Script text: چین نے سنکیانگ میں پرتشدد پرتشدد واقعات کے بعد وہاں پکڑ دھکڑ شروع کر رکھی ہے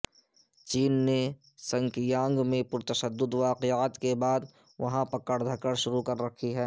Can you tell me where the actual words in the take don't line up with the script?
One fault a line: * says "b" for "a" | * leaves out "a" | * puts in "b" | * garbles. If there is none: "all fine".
* leaves out "پرتشدد"